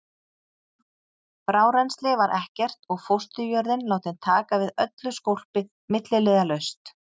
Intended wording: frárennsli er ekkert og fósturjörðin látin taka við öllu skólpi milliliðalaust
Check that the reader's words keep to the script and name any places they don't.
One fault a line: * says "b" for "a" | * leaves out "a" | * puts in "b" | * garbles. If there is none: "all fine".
* says "var" for "er"